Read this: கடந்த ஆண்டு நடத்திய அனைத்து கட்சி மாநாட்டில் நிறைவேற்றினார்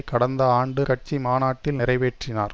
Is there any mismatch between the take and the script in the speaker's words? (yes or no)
yes